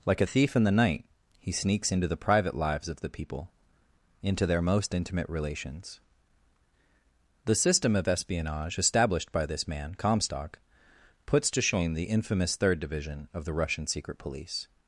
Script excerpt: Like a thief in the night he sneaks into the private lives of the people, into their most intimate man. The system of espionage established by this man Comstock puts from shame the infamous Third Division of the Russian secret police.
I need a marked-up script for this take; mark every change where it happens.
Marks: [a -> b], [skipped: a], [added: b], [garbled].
Like a thief in the night he sneaks into the private lives of the people, into their most intimate [man. -> relations] The system of espionage established by this man Comstock puts [from -> to] shame the infamous Third Division of the Russian secret police.